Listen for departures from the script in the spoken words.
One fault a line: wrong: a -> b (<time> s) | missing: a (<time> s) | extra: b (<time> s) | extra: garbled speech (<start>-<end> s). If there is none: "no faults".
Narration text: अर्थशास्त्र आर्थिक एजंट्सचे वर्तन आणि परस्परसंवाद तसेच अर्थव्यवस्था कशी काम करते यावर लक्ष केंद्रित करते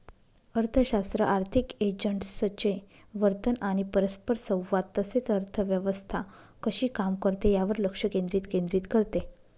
extra: केंद्रित (8.5 s)